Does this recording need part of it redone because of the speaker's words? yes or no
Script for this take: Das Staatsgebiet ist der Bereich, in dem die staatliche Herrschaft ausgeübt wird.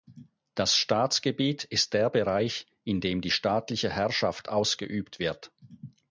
no